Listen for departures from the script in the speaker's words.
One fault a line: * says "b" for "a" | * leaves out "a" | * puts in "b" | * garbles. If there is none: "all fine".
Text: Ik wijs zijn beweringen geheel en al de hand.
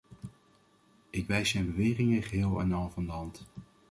* puts in "van"